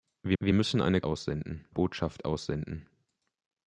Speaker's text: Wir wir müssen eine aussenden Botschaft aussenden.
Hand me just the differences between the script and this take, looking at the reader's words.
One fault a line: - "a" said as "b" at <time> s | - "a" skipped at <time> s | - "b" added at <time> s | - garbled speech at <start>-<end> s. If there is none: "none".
none